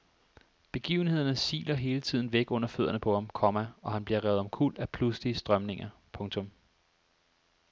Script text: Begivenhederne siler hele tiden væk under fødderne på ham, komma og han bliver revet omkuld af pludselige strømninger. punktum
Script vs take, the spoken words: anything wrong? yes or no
no